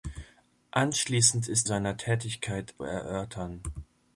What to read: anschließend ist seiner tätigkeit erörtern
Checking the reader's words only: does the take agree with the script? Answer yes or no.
yes